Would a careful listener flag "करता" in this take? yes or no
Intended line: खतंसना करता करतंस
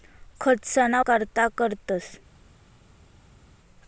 no